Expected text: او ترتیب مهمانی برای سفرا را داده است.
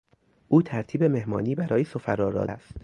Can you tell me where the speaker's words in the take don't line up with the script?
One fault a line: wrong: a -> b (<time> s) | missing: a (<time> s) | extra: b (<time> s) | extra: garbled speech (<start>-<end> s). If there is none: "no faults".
missing: داده (2.5 s)